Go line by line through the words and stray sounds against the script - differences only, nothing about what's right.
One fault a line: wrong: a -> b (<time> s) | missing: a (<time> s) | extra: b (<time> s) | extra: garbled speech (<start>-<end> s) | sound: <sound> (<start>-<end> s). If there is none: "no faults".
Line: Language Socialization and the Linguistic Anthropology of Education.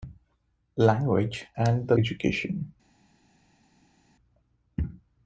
missing: Socialization (1.4 s)
missing: Linguistic Anthropology of (2.0 s)